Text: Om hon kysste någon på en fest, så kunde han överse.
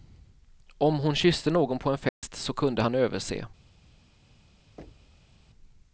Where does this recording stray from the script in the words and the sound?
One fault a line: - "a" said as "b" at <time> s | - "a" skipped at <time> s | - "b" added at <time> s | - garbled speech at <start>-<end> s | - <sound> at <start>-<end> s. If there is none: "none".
- dropout at 2.1-2.2 s
- thud at 4.8-5.4 s